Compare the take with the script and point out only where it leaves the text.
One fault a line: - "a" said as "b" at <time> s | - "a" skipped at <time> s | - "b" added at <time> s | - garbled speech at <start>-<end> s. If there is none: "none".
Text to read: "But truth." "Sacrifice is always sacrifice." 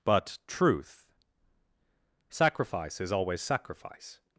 none